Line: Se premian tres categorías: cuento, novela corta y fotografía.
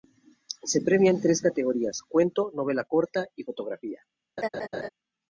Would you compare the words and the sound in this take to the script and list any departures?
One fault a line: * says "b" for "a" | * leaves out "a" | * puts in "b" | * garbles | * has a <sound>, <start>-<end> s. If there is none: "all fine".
* has a laugh, 4.4-4.9 s